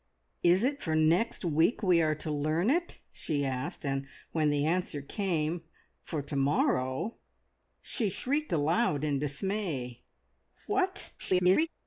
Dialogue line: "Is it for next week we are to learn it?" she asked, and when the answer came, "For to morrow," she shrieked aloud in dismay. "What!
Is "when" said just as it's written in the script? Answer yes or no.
yes